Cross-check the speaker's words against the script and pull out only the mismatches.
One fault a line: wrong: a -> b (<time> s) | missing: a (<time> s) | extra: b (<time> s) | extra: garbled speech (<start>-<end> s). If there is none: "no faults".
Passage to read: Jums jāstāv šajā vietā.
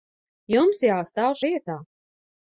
missing: šajā (1.4 s)